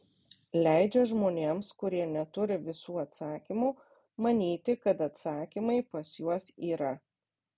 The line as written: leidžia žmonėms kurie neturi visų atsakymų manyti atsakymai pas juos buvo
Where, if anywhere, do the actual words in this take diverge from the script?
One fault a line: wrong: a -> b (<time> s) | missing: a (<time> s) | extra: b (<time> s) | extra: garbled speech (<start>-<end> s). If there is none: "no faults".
extra: kad (4.9 s)
wrong: buvo -> yra (6.7 s)